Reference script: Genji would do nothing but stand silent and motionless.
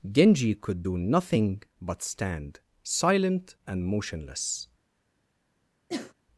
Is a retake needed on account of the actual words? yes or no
yes